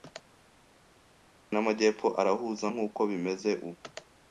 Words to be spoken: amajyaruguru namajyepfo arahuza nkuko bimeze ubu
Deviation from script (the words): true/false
false